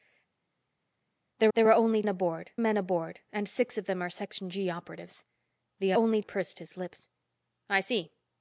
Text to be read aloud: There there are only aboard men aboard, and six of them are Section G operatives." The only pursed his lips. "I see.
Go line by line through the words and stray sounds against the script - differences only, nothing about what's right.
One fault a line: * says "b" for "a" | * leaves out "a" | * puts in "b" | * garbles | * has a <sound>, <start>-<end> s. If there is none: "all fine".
all fine